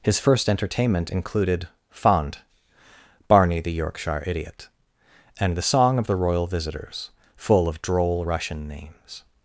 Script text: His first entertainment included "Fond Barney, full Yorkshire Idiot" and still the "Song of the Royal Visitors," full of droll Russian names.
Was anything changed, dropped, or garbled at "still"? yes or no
yes